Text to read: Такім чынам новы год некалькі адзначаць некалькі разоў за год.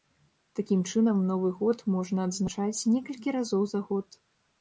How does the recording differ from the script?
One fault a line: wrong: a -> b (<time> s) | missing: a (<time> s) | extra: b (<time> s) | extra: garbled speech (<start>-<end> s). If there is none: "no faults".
wrong: некалькі -> можна (1.9 s)